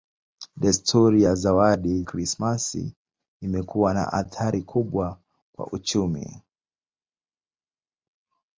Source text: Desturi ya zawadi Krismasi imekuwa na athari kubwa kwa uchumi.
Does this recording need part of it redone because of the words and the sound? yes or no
no